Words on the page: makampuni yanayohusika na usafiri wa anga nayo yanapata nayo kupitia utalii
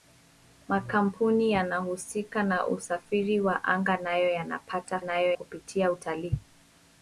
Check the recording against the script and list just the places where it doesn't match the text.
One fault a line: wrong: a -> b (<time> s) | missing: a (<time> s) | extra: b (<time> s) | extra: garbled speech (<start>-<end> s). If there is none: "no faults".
no faults